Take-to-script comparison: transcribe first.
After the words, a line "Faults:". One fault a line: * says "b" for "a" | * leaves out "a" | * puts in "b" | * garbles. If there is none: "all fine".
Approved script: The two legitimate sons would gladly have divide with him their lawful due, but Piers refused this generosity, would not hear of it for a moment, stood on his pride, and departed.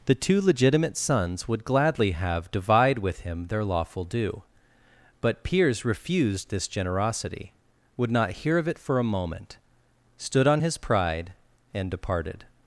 The two legitimate sons would gladly have divide with him their lawful due, but Piers refused this generosity, would not hear of it for a moment, stood on his pride, and departed.
Faults:
all fine